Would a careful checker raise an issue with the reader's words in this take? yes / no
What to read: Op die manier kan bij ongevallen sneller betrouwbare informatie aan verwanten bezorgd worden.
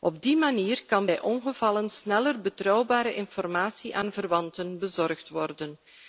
no